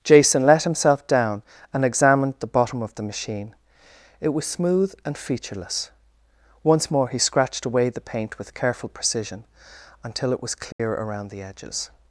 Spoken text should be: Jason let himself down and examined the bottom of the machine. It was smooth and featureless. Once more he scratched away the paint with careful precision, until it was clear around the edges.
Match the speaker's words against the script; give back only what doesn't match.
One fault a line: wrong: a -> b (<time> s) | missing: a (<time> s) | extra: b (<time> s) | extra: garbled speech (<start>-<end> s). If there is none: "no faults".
no faults